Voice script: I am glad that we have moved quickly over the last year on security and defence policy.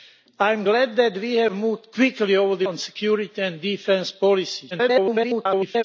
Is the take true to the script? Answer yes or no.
no